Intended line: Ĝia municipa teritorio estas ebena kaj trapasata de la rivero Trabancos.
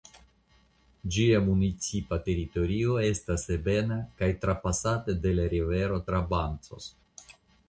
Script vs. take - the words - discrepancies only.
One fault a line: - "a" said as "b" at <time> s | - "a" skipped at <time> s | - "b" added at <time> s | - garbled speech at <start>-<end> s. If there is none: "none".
none